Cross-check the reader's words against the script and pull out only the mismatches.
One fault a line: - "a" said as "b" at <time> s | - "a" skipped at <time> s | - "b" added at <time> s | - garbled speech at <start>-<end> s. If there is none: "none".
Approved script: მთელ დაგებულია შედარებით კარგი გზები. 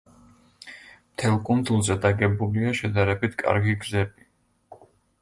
- "კუნძულზე" added at 1.5 s